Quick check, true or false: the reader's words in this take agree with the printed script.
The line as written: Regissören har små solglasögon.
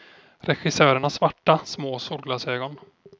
false